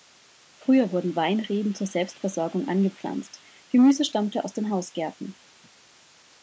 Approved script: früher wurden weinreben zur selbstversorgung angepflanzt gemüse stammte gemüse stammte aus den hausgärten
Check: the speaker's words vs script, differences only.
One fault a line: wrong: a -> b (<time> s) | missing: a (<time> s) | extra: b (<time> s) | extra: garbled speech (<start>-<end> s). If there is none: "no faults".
missing: gemüse stammte (4.4 s)